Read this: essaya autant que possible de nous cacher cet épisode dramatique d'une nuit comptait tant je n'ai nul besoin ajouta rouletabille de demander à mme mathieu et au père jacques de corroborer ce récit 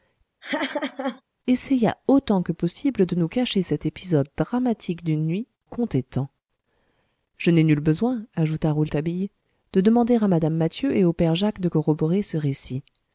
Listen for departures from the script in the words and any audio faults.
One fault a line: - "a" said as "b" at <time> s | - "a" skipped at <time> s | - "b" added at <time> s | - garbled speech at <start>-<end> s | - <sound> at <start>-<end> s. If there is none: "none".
- laugh at 0.4-1.2 s